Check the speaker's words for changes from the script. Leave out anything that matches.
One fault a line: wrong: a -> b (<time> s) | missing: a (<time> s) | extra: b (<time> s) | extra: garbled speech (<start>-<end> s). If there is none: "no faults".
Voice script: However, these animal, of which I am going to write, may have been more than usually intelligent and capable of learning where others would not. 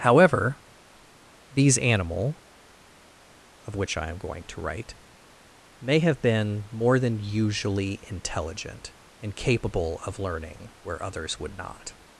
no faults